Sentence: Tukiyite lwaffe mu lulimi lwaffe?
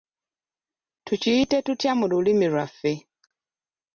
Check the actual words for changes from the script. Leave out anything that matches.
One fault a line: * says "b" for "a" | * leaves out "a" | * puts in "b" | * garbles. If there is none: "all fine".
* says "tutya" for "lwaffe"